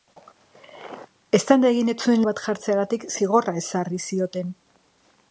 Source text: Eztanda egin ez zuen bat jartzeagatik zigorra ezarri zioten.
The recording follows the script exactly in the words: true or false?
true